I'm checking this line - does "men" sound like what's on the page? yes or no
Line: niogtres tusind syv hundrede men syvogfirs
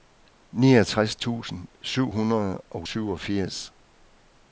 no